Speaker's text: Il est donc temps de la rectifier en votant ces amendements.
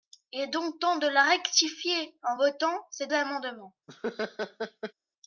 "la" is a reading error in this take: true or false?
false